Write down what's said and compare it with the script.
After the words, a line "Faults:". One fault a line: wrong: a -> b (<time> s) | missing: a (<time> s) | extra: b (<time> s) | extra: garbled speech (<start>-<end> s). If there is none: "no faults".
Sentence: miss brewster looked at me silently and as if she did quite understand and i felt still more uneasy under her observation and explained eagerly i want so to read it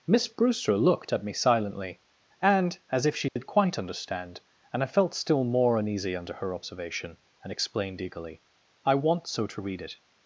miss brewster looked at me silently and as if she did quite understand and i felt still more uneasy under her observation and explained eagerly i want so to read it
Faults:
no faults